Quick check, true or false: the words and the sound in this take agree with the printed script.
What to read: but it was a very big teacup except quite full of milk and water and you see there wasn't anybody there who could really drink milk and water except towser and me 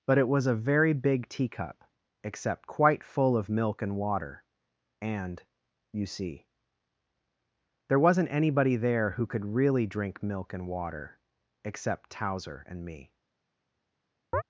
false